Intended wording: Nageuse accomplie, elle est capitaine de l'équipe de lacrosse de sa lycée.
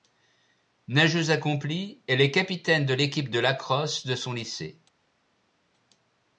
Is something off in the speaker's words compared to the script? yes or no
yes